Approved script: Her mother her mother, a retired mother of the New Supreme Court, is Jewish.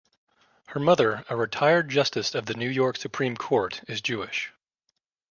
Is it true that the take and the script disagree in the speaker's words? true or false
true